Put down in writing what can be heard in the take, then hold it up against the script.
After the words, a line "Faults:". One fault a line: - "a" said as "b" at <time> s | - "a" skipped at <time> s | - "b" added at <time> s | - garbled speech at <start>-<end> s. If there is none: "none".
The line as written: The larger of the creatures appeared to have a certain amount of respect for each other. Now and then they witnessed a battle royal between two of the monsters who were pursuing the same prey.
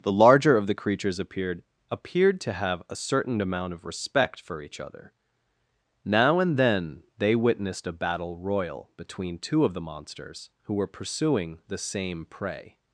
The larger of the creatures appeared appeared to have a certain amount of respect for each other. Now and then they witnessed a battle royal between two of the monsters who were pursuing the same prey.
Faults:
- "appeared" added at 1.9 s